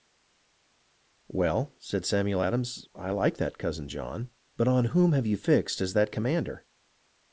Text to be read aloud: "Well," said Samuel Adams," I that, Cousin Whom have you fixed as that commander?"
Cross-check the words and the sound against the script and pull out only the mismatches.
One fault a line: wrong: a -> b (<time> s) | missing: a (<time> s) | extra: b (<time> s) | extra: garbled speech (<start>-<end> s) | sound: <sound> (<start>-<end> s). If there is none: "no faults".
extra: like (3.1 s)
extra: John but on (3.9 s)